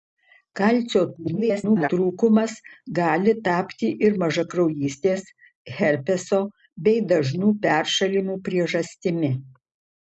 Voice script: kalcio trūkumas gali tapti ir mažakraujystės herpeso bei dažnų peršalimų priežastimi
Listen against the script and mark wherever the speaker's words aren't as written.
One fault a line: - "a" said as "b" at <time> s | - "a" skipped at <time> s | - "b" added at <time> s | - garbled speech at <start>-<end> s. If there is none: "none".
- garbled speech at 1.2-1.9 s